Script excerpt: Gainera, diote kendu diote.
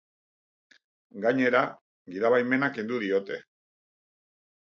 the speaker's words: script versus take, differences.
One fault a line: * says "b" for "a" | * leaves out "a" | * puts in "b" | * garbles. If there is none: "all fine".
* says "gidabaimena" for "diote"